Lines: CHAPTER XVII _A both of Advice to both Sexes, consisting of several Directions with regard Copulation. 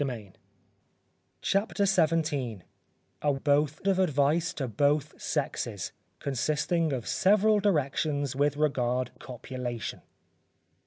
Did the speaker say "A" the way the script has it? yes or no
yes